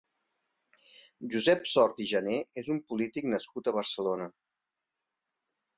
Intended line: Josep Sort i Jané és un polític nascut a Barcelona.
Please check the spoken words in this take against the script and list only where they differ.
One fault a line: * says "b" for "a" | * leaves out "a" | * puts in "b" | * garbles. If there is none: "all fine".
all fine